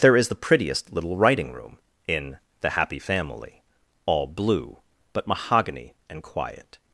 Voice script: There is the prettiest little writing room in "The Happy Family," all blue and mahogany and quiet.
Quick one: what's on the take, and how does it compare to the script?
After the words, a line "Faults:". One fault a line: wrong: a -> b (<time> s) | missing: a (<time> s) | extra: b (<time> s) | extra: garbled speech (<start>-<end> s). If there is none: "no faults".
There is the prettiest little writing room in "The Happy Family," all blue but mahogany and quiet.
Faults:
wrong: and -> but (5.1 s)